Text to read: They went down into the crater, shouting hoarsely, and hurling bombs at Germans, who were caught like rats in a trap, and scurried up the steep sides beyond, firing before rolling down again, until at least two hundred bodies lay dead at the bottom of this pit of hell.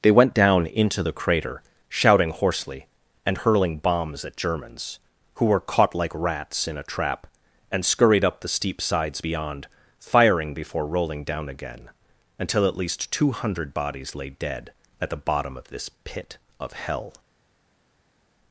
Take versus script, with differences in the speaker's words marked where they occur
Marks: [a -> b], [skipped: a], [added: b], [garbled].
They went down into the crater, shouting hoarsely, and hurling bombs at Germans, who were caught like rats in a trap, and scurried up the steep sides beyond, firing before rolling down again, until at least two hundred bodies lay dead at the bottom of this pit of hell.